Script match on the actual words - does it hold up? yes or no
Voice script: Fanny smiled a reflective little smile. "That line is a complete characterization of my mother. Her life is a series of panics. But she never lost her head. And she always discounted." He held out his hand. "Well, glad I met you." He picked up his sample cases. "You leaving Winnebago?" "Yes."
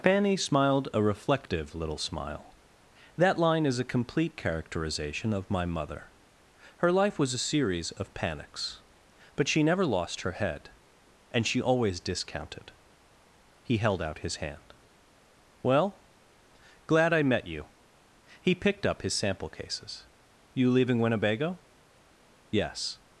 no